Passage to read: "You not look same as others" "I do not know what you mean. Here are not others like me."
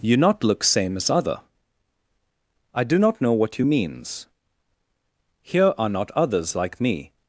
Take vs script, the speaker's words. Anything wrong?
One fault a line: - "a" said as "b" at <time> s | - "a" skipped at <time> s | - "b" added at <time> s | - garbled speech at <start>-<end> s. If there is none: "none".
- "others" said as "other" at 1.1 s
- "mean" said as "means" at 3.6 s